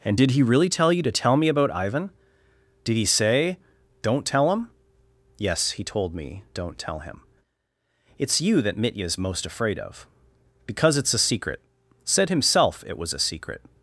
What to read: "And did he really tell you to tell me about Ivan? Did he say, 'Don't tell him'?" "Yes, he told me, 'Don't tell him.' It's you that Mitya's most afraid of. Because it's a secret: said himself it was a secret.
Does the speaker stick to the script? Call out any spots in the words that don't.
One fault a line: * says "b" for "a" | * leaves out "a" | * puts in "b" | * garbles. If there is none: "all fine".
all fine